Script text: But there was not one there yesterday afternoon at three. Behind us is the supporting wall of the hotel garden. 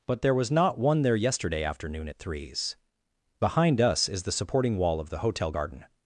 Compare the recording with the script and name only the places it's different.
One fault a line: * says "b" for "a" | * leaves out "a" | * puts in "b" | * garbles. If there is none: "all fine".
* says "threes" for "three"